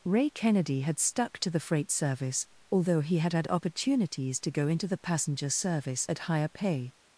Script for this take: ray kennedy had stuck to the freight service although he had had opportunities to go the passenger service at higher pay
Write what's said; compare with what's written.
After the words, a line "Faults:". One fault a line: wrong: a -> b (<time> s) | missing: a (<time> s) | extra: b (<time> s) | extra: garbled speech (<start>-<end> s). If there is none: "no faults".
ray kennedy had stuck to the freight service although he had had opportunities to go into the passenger service at higher pay
Faults:
extra: into (4.7 s)